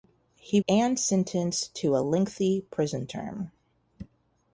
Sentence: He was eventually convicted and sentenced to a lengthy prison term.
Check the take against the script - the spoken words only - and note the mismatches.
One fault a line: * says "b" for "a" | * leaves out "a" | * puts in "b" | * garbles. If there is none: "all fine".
* leaves out "was eventually convicted"